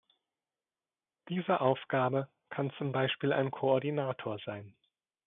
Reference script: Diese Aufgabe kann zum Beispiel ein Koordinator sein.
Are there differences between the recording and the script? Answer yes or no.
no